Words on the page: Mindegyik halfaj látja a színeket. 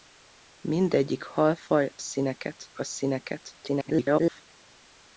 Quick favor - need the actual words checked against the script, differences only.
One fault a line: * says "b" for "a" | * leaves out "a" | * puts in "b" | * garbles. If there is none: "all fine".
* says "színeket" for "látja"
* garbles